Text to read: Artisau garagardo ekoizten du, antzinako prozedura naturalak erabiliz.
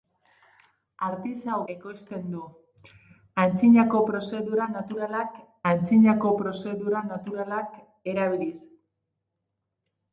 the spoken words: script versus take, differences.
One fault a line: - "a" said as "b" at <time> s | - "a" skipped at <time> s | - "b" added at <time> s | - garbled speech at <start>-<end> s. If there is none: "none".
- "garagardo" skipped at 1.6 s
- "antzinako prozedura naturalak" added at 5.7 s